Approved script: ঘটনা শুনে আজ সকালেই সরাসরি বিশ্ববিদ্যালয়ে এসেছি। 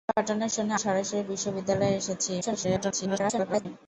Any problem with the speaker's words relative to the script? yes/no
yes